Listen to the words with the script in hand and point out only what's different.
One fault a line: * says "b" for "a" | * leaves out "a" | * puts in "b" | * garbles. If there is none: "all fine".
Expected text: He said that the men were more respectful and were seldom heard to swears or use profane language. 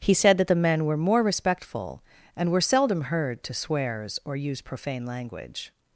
all fine